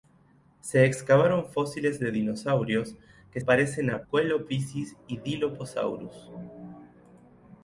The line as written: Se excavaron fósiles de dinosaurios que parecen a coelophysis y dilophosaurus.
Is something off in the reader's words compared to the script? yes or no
no